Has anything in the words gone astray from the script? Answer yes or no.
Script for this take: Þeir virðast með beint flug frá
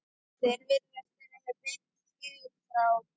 yes